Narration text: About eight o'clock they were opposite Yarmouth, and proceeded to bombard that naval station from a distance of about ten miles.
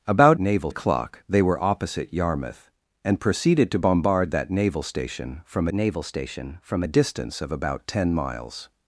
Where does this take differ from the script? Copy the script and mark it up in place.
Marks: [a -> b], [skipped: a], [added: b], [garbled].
About [eight -> naval] o'clock they were opposite Yarmouth, and proceeded to bombard that naval station from [added: naval station from] a distance of about ten miles.